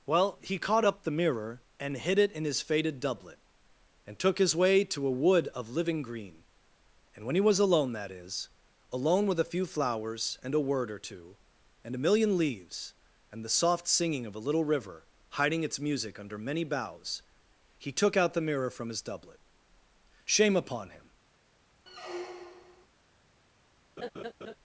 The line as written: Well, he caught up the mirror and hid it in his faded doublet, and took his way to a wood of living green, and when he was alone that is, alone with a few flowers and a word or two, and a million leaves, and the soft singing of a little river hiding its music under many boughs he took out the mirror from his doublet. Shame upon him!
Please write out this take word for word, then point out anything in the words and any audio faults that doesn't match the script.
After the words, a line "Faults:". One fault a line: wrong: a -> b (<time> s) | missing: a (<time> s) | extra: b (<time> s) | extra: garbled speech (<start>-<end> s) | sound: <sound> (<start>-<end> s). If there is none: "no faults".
Well, he caught up the mirror and hid it in his faded doublet, and took his way to a wood of living green, and when he was alone that is, alone with a few flowers and a word or two, and a million leaves, and the soft singing of a little river hiding its music under many boughs he took out the mirror from his doublet. Shame upon him!
Faults:
sound: squeak (21.9-22.9 s)
sound: laugh (24.0-24.6 s)